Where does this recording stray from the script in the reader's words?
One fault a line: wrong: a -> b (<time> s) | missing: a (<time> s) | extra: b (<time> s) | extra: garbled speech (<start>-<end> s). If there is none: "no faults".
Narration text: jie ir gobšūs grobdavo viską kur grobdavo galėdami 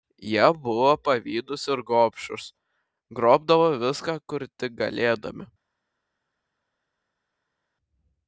extra: buvo pavydūs (0.6 s)
wrong: grobdavo -> tik (4.6 s)